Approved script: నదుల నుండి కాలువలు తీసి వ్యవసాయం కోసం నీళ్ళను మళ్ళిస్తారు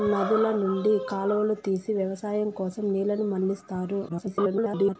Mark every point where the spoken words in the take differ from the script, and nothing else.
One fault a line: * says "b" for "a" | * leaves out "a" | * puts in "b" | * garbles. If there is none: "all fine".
* garbles